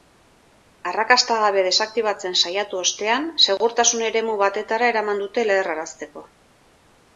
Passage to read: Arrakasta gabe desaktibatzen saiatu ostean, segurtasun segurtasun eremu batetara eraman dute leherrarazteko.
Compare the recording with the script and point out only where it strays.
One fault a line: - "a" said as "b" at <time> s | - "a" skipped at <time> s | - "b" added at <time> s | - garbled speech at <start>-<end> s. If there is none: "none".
- "segurtasun" skipped at 4.1 s